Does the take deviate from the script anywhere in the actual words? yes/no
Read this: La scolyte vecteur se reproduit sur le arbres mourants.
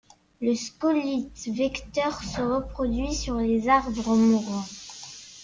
yes